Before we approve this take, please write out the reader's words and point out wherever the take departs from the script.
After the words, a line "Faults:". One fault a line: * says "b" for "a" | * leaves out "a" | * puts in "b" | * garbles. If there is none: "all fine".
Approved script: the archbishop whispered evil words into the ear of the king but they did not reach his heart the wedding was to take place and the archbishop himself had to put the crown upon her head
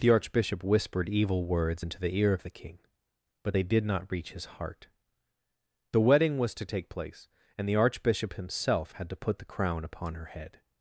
the archbishop whispered evil words into the ear of the king but they did not reach his heart the wedding was to take place and the archbishop himself had to put the crown upon her head
Faults:
all fine